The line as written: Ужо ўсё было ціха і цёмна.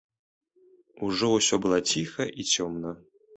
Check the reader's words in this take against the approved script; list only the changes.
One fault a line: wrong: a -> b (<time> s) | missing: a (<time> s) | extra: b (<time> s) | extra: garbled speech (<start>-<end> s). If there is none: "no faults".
no faults